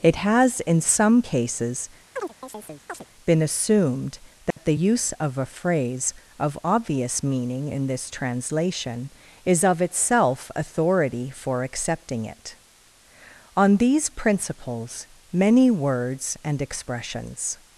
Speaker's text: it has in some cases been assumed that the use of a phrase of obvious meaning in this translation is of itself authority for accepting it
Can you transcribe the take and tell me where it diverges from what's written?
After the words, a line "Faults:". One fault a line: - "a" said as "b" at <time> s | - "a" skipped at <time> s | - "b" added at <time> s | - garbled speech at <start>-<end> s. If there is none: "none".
it has in some cases been assumed that the use of a phrase of obvious meaning in this translation is of itself authority for accepting it on these principles many words and expressions
Faults:
- "on these principles many words and expressions" added at 13.6 s